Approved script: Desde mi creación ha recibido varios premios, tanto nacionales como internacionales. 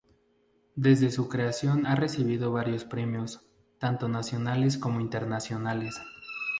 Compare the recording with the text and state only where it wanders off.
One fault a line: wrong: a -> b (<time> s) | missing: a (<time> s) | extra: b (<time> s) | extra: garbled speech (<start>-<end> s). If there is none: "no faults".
wrong: mi -> su (1.1 s)